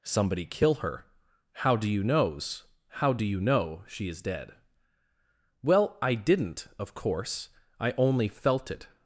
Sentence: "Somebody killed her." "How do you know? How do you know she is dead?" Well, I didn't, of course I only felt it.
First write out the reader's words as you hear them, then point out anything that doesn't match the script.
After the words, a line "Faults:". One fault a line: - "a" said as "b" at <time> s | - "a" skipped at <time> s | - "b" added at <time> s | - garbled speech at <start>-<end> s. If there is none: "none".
"Somebody kill her." "How do you knows? How do you know she is dead?" Well, I didn't, of course I only felt it.
Faults:
- "killed" said as "kill" at 0.5 s
- "know" said as "knows" at 2.0 s